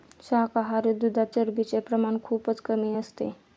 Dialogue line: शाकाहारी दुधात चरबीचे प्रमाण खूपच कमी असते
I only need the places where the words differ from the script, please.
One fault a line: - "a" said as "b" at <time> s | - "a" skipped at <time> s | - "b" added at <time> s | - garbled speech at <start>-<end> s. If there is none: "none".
none